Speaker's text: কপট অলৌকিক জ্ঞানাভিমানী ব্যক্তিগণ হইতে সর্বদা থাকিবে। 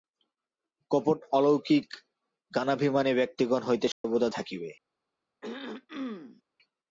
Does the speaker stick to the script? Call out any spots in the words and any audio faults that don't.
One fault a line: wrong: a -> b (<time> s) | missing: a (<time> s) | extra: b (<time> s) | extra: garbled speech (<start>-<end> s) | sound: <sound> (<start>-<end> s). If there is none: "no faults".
sound: dropout (3.9-4.0 s)
sound: throat clearing (5.4-6.4 s)